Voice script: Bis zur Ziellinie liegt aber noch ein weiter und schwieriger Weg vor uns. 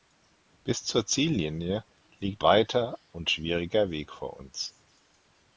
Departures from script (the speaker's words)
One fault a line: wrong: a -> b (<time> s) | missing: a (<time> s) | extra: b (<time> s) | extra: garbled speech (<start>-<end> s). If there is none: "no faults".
missing: aber noch ein (2.4 s)